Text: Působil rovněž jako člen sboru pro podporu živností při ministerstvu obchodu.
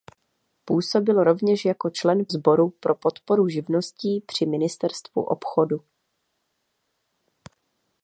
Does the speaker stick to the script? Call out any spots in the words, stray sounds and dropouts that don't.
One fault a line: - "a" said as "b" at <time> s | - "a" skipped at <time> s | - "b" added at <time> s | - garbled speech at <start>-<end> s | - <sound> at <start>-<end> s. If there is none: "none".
none